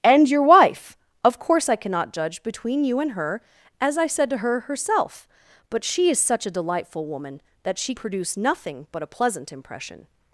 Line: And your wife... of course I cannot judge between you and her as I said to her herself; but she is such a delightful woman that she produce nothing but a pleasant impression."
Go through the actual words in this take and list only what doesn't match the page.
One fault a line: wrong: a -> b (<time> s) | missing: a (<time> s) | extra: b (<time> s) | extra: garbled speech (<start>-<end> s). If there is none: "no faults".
no faults